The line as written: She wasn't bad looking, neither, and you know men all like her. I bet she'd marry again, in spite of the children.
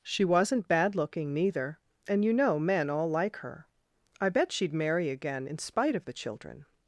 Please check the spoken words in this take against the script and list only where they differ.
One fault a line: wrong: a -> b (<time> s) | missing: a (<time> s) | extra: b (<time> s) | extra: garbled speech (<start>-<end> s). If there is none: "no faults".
no faults